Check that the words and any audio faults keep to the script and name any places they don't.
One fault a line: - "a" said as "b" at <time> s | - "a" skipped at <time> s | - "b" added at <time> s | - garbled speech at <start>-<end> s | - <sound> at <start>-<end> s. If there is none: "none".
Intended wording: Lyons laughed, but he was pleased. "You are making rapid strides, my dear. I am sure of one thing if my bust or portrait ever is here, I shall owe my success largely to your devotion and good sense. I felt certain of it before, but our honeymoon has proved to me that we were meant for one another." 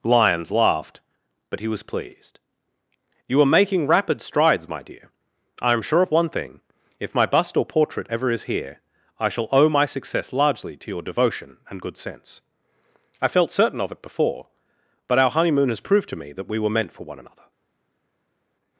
none